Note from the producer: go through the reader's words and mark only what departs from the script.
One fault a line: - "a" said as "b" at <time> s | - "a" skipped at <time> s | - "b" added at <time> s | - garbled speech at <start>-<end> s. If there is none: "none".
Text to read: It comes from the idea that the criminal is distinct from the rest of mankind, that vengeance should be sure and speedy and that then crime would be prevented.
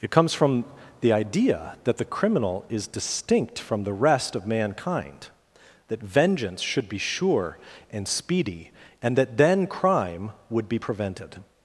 none